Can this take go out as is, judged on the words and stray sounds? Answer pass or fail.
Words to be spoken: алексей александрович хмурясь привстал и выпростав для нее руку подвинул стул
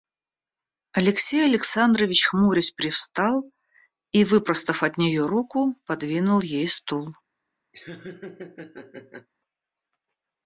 fail